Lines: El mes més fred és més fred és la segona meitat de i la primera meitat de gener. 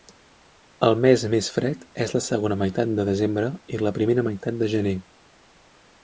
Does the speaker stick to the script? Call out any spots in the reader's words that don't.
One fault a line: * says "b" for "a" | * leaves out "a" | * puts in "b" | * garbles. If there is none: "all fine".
* leaves out "més fred és"
* puts in "desembre"